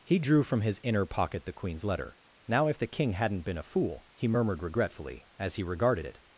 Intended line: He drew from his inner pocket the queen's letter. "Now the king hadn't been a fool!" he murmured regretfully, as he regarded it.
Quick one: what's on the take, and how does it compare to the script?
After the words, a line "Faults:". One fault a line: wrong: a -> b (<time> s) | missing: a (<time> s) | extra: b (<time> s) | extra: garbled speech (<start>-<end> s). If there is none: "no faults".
He drew from his inner pocket the queen's letter. "Now if the king hadn't been a fool!" he murmured regretfully, as he regarded it.
Faults:
extra: if (2.7 s)